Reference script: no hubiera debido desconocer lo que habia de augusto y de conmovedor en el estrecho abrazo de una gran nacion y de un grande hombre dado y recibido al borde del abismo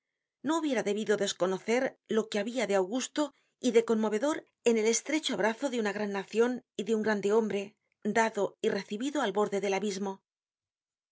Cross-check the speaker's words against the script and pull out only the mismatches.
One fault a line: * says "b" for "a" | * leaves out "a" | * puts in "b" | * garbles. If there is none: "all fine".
all fine